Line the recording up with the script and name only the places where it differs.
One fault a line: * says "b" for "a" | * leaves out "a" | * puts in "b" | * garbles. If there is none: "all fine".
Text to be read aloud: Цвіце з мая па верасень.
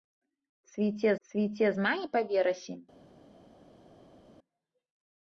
* puts in "цвіце"